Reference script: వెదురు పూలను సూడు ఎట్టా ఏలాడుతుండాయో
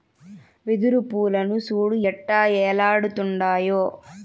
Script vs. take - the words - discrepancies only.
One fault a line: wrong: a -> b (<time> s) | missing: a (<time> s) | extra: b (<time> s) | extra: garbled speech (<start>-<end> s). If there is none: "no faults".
no faults